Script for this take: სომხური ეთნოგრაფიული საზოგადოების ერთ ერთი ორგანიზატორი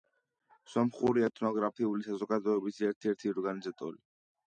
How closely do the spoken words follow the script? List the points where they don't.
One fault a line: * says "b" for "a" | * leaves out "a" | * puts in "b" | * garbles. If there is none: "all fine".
all fine